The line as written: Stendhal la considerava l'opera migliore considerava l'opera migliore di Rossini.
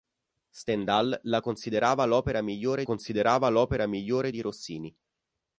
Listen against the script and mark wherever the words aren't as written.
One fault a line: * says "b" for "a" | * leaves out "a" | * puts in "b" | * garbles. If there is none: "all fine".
all fine